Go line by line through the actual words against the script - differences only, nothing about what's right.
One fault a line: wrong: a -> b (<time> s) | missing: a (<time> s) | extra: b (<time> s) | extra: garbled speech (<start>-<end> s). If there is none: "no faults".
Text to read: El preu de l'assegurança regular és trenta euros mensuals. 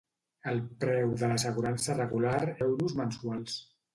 missing: és trenta (2.4 s)